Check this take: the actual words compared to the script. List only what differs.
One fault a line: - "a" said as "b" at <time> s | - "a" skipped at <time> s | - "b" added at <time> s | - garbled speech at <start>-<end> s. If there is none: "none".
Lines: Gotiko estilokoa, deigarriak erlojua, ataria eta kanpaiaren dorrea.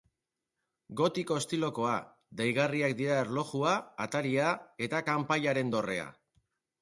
- "dira" added at 3.0 s